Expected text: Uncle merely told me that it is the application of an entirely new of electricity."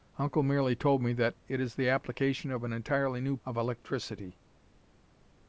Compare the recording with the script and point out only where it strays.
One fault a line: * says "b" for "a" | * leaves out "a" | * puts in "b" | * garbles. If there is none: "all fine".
all fine